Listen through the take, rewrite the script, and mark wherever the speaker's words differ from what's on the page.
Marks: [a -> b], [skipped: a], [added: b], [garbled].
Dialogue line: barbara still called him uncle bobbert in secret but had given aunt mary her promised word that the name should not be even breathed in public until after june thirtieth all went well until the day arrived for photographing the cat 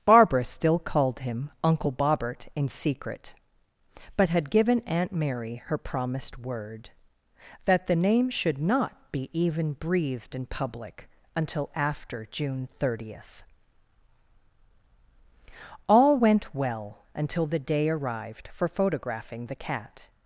barbara still called him uncle bobbert in secret but had given aunt mary her promised word that the name should not be even breathed in public until after june thirtieth all went well until the day arrived for photographing the cat